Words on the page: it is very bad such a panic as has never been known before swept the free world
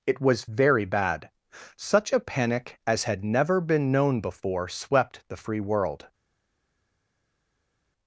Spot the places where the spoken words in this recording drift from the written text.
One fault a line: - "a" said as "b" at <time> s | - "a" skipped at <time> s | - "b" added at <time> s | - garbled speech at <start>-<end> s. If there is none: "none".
- "is" said as "was" at 0.2 s
- "has" said as "had" at 3.0 s